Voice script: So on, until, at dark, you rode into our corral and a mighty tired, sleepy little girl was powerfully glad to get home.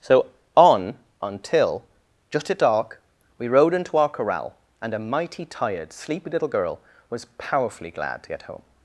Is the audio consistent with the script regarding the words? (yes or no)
no